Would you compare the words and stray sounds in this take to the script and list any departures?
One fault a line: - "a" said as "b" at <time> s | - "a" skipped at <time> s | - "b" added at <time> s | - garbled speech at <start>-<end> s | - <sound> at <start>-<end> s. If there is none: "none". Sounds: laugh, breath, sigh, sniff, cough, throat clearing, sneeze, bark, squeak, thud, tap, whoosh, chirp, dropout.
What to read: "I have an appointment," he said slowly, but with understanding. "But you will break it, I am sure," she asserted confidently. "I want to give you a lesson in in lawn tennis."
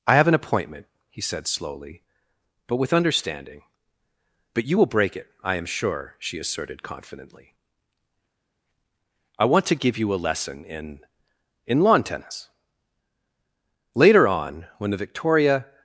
- "Later on when the victoria" added at 13.9 s